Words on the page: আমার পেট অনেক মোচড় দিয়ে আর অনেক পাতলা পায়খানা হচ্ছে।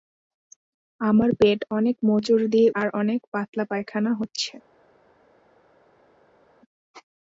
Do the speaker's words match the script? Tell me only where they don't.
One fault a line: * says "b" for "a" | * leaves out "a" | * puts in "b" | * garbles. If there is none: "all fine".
all fine